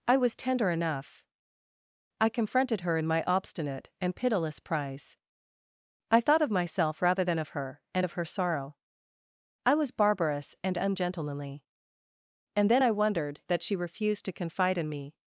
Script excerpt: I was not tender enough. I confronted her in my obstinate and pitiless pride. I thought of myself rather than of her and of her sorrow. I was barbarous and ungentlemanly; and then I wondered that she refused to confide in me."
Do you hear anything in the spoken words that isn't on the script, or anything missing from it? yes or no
yes